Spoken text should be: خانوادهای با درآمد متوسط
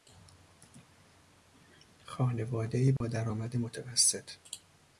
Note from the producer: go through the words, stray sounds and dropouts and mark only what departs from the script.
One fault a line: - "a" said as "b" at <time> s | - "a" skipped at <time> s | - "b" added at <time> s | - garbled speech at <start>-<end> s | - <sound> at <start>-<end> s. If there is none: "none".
- dropout at 3.0-3.0 s